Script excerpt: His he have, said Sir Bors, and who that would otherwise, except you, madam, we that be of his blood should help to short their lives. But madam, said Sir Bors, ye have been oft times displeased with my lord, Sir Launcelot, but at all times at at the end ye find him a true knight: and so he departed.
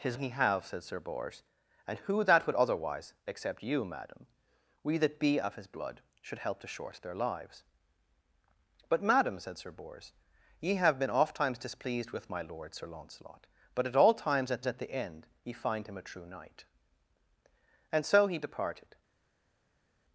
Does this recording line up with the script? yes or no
yes